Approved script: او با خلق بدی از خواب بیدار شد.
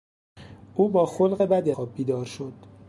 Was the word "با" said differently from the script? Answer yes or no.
no